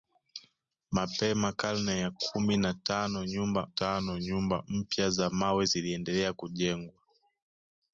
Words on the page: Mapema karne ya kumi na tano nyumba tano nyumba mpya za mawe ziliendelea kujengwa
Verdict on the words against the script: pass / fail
pass